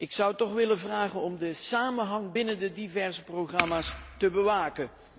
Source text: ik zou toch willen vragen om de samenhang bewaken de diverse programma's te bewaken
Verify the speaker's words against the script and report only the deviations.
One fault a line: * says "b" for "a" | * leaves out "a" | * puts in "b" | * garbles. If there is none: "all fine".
* says "binnen" for "bewaken"